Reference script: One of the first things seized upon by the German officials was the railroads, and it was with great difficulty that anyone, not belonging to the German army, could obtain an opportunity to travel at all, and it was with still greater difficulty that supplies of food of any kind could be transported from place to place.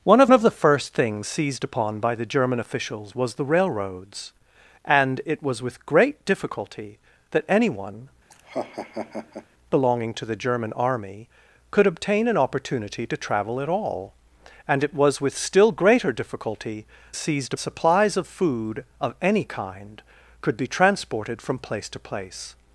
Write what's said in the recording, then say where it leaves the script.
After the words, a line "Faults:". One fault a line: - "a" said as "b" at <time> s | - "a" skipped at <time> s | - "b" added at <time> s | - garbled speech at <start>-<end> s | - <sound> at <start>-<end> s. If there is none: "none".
One of of the first things seized upon by the German officials was the railroads, and it was with great difficulty that anyone, belonging to the German army, could obtain an opportunity to travel at all, and it was with still greater difficulty seized supplies of food of any kind could be transported from place to place.
Faults:
- "of" added at 0.3 s
- "not" skipped at 8.1 s
- laugh at 8.3-9.5 s
- "that" said as "seized" at 17.2 s